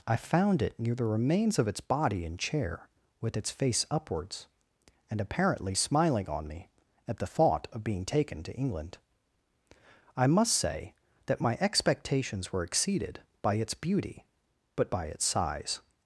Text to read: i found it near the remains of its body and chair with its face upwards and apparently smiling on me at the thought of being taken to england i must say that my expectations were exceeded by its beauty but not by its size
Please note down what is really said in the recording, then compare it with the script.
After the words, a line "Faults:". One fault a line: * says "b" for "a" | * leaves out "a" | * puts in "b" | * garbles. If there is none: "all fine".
i found it near the remains of its body and chair with its face upwards and apparently smiling on me at the thought of being taken to england i must say that my expectations were exceeded by its beauty but by its size
Faults:
* leaves out "not"